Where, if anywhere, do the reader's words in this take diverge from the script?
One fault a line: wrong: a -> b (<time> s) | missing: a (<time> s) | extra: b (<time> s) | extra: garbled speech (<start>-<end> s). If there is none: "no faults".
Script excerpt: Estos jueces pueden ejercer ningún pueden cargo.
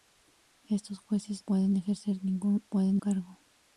no faults